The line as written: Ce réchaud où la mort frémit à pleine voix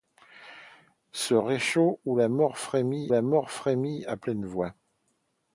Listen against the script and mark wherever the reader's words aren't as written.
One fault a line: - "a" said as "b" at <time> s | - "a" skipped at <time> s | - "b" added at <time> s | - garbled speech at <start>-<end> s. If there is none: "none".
- "la mort frémit" added at 3.1 s